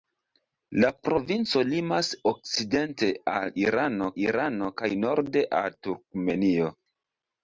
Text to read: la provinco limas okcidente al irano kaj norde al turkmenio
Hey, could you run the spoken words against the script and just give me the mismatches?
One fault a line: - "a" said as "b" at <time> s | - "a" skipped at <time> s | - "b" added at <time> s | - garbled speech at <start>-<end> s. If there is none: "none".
- "irano" added at 4.2 s